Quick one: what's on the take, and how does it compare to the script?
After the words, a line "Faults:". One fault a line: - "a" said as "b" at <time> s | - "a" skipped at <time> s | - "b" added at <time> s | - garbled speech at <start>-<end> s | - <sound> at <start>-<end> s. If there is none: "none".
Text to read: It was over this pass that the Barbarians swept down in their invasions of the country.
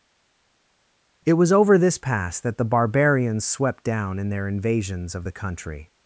It was over this pass that the Barbarians swept down in their invasions of the country.
Faults:
none